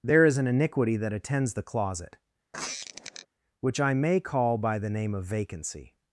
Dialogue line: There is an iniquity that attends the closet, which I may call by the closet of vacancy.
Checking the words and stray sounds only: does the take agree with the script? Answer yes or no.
no